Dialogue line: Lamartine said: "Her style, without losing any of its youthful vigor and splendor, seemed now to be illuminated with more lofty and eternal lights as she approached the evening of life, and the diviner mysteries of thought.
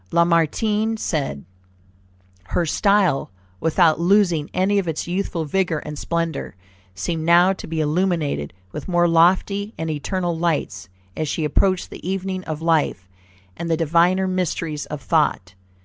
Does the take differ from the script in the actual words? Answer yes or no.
no